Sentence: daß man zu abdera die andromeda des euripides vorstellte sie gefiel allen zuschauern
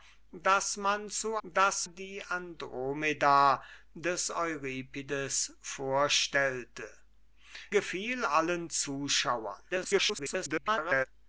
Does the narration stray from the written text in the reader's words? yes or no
yes